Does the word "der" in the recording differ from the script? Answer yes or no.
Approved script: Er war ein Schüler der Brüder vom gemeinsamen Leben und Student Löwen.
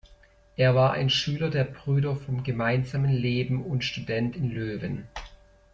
no